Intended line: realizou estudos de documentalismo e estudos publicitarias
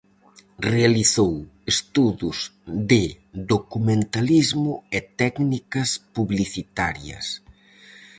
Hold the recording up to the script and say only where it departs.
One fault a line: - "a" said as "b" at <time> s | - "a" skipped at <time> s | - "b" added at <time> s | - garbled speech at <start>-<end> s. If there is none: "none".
- "estudos" said as "técnicas" at 5.2 s